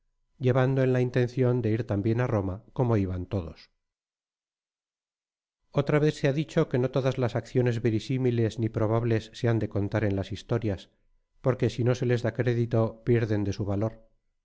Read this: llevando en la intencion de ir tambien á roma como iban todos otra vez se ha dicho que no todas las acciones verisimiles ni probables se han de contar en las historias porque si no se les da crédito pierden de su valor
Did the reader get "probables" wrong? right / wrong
right